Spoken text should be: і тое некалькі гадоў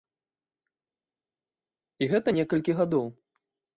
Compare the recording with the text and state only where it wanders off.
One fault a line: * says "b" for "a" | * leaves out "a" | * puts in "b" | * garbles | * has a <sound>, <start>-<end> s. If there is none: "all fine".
* says "гэта" for "тое"